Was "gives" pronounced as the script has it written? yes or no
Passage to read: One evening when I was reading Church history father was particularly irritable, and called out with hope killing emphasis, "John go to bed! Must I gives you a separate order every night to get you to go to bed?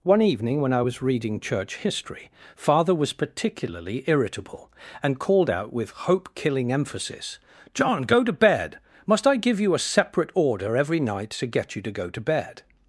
no